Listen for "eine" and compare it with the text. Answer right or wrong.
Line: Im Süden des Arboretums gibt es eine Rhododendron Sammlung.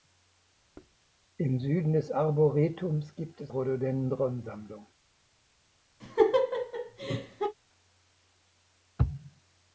wrong